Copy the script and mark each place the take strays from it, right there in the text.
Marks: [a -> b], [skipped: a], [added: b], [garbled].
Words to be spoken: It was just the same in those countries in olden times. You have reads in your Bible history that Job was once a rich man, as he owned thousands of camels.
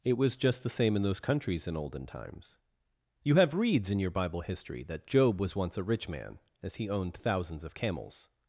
It was just the same in those countries in olden times. You have reads in your Bible history that Job was once a rich man, as he owned thousands of camels.